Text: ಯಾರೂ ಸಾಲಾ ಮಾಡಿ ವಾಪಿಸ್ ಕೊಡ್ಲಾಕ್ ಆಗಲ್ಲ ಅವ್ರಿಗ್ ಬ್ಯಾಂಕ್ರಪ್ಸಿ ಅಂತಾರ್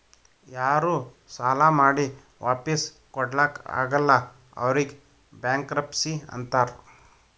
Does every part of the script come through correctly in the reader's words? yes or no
yes